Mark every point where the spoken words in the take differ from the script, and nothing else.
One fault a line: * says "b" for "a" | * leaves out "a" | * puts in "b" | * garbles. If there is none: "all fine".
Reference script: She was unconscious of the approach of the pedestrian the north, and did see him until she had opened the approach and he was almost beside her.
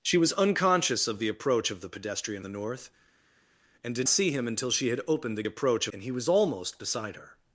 all fine